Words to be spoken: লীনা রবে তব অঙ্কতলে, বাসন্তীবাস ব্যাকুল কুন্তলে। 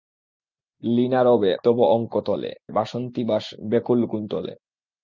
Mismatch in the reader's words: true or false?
false